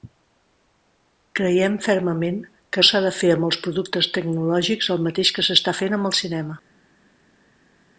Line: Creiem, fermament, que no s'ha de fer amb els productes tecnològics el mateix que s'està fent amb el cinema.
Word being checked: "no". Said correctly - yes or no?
no